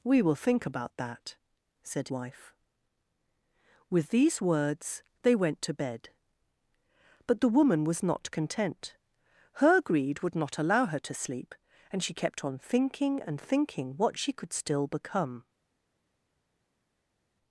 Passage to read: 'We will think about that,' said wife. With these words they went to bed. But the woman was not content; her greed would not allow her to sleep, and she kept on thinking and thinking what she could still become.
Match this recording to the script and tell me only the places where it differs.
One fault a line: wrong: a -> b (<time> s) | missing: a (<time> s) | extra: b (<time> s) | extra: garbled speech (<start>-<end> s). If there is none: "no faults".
no faults